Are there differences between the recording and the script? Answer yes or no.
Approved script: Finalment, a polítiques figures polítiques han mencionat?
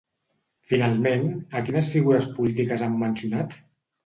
yes